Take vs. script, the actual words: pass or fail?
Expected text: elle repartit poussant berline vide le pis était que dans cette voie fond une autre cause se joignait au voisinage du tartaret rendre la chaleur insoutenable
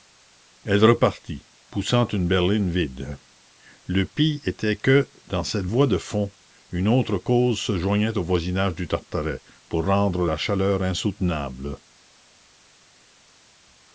fail